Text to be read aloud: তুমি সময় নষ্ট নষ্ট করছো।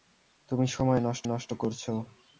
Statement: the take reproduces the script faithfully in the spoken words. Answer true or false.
true